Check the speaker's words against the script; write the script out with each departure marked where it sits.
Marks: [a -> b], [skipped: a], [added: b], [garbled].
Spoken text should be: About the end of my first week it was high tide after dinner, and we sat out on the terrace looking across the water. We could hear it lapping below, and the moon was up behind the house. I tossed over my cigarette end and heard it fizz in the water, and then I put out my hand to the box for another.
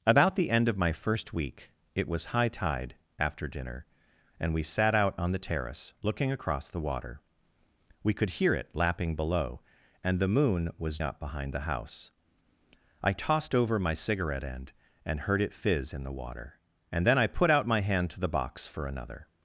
About the end of my first week it was high tide after dinner, and we sat out on the terrace looking across the water. We could hear it lapping below, and the moon was up behind the house. I tossed over my cigarette end and heard it fizz in the water, and then I put out my hand to the box for another.